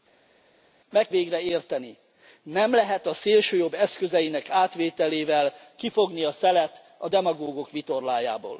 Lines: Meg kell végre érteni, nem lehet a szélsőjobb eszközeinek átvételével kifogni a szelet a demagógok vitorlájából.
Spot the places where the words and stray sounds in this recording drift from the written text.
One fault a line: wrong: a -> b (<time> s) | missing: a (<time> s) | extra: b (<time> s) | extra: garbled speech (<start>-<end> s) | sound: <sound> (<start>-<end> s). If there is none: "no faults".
missing: kell (1.1 s)